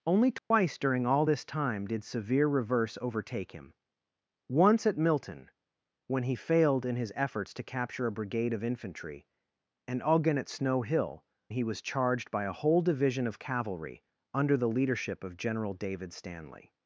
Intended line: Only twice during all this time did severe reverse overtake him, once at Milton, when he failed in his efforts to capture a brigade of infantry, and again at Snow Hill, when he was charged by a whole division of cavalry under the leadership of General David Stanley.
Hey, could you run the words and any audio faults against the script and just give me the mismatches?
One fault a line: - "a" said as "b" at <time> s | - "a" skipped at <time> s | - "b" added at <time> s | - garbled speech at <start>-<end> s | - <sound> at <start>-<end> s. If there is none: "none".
- dropout at 0.4-0.5 s
- "when" skipped at 11.3 s